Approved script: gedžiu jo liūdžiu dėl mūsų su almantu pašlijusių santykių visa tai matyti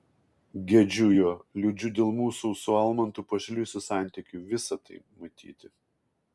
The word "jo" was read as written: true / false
true